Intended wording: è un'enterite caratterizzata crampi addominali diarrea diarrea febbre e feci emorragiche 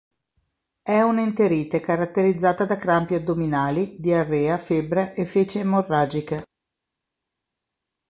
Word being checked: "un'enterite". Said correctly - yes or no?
yes